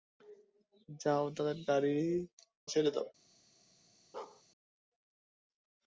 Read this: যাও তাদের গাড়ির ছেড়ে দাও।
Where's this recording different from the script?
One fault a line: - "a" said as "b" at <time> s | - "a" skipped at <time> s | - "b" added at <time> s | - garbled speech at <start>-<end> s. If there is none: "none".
none